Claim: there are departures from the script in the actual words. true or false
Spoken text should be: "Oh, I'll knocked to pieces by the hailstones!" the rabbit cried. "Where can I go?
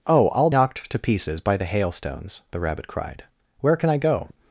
false